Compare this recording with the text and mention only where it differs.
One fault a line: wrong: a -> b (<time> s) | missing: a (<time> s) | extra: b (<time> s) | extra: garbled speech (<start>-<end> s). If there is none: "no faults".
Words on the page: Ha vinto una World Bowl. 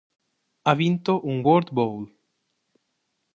wrong: una -> un (1.3 s)